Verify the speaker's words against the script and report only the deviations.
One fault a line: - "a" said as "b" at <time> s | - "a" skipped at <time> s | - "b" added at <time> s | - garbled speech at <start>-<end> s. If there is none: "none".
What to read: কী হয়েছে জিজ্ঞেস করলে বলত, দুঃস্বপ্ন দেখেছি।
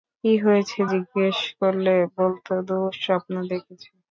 none